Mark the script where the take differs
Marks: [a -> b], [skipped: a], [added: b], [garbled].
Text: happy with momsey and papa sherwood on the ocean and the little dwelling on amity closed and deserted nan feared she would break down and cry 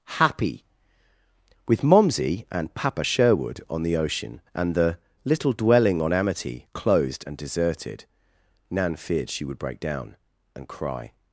happy with momsey and papa sherwood on the ocean and the little dwelling on amity closed and deserted nan feared she would break down and cry